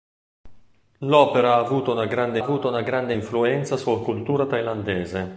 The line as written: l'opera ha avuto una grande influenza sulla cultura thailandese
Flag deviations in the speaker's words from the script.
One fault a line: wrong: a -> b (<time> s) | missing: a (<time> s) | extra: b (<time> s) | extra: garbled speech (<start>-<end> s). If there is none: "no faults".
extra: avuto una grande (2.4 s)